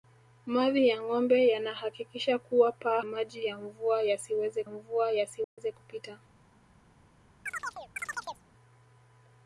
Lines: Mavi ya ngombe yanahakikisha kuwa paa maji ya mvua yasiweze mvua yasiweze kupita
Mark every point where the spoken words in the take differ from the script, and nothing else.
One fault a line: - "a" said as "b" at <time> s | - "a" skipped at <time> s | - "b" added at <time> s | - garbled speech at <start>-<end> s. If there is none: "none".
none